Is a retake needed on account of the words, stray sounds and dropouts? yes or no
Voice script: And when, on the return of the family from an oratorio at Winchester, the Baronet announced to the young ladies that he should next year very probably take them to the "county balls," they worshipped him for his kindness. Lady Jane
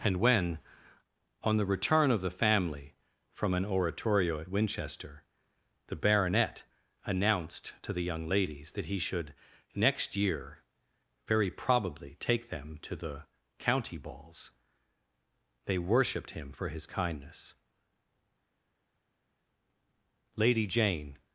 no